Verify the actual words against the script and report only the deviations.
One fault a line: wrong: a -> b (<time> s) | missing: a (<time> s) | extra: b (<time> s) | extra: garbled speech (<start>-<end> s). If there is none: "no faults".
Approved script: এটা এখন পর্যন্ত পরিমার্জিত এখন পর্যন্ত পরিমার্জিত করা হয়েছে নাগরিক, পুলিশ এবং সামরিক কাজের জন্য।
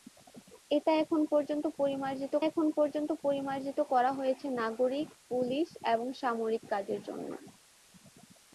no faults